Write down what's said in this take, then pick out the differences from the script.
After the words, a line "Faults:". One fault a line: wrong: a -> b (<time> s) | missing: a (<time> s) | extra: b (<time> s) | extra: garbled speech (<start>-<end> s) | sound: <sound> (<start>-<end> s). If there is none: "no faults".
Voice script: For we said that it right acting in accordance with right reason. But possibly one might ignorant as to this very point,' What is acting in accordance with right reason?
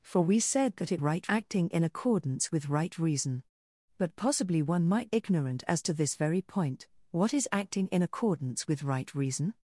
For we said that it right acting in accordance with right reason. But possibly one might ignorant as to this very point,' What is acting in accordance with right reason?
Faults:
no faults